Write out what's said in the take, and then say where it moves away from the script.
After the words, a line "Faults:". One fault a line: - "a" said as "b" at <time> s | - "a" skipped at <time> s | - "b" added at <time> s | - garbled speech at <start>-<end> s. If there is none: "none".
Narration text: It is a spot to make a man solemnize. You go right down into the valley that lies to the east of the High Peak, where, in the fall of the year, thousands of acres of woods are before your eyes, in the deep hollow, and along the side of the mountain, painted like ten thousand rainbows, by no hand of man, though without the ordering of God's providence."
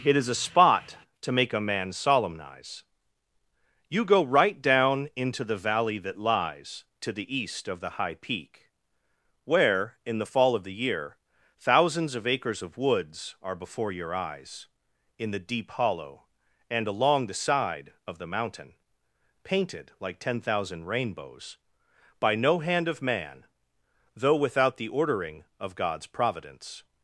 It is a spot to make a man solemnize. You go right down into the valley that lies to the east of the High Peak, where, in the fall of the year, thousands of acres of woods are before your eyes, in the deep hollow, and along the side of the mountain, painted like ten thousand rainbows, by no hand of man, though without the ordering of God's providence."
Faults:
none